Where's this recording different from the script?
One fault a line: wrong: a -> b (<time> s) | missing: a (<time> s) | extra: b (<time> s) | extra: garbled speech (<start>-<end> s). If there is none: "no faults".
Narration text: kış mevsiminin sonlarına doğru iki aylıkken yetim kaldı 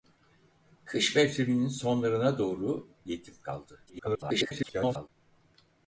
missing: iki aylıkken (2.9 s)
extra: garbled speech (3.9-5.1 s)